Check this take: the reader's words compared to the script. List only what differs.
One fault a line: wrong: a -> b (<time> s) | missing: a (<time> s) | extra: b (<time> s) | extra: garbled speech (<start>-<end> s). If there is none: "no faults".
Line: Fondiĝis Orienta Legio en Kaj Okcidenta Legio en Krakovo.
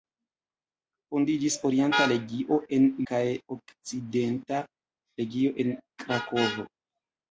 no faults